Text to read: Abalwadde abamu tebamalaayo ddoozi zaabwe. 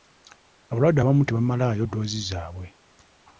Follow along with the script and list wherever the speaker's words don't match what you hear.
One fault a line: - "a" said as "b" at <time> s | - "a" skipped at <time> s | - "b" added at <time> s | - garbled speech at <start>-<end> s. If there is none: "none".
none